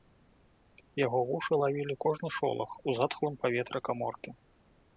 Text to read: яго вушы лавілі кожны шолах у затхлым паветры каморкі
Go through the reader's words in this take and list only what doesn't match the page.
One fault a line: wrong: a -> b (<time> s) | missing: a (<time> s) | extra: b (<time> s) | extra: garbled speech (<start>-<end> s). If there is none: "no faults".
no faults